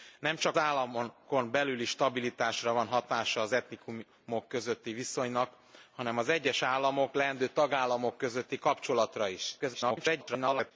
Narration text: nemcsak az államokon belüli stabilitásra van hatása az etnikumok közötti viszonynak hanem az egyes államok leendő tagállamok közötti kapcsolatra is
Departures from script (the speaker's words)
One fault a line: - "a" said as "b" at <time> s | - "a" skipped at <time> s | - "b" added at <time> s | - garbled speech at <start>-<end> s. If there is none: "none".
- "az" skipped at 0.6 s
- garbled speech at 9.6-10.7 s